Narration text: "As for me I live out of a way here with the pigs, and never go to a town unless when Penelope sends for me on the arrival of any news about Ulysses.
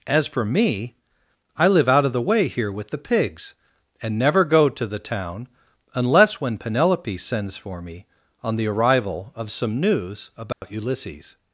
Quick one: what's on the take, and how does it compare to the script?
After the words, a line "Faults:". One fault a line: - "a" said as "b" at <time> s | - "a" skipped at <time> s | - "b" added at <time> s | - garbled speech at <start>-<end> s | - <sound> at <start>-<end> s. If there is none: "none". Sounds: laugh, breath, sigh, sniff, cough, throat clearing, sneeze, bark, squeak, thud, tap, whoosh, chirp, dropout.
"As for me I live out of the way here with the pigs, and never go to the town unless when Penelope sends for me on the arrival of some news about Ulysses.
Faults:
- "a" said as "the" at 2.1 s
- "a" said as "the" at 4.9 s
- "any" said as "some" at 9.5 s
- dropout at 10.5-10.6 s